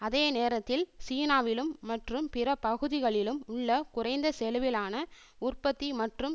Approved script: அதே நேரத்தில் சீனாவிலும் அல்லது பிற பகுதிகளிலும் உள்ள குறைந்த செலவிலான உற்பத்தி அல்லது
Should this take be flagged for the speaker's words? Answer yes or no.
yes